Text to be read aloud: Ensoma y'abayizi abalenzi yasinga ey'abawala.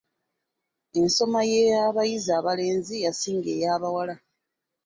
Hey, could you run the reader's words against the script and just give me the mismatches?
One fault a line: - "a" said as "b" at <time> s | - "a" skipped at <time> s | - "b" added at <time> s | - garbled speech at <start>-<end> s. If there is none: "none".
none